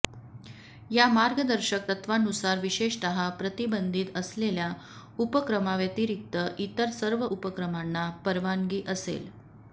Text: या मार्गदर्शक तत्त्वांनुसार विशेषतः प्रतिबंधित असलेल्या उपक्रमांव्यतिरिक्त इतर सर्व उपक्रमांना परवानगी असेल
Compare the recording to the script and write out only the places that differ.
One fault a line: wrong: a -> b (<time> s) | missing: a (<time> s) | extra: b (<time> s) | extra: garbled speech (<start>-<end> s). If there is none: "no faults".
no faults